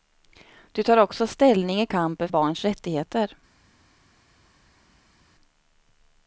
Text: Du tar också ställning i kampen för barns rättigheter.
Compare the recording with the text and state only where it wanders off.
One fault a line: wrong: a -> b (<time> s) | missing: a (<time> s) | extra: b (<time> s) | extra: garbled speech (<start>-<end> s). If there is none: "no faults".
missing: för (2.3 s)